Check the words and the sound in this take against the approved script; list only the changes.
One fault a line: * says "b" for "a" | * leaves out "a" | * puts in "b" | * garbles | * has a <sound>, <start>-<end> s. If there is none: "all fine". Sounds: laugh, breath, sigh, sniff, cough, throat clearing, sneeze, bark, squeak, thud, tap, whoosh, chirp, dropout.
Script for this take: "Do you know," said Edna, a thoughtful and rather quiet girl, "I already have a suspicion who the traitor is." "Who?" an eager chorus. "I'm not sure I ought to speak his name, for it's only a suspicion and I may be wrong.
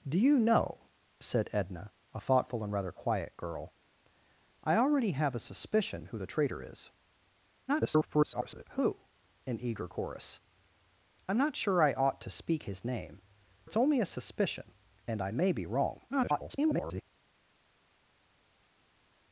* garbles
* leaves out "for"
* garbles